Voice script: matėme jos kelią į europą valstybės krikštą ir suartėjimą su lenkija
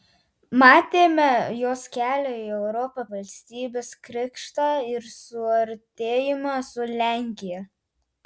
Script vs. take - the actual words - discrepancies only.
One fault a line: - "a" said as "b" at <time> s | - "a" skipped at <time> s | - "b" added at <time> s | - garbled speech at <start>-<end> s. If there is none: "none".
none